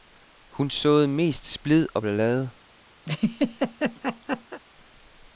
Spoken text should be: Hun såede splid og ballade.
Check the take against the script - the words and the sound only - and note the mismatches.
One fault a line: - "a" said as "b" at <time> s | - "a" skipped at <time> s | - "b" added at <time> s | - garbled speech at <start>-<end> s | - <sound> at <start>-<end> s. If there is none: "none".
- "mest" added at 1.1 s
- laugh at 3.1-4.6 s